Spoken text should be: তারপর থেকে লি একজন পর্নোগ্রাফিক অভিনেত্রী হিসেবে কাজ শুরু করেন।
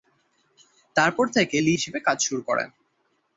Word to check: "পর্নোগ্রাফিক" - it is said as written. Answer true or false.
false